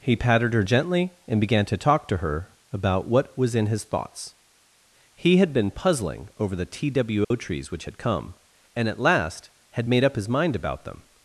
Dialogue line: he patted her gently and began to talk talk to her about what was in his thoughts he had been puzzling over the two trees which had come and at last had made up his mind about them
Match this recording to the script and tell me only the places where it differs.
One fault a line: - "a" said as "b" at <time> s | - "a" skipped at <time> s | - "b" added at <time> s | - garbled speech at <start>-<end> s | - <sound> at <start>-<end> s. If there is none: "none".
- "talk" skipped at 2.1 s
- dropout at 7.2-7.3 s